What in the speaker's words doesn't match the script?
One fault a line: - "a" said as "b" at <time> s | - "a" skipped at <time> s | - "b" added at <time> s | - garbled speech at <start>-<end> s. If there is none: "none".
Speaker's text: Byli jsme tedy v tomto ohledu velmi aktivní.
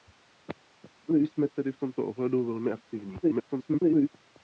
- garbled speech at 3.2-4.1 s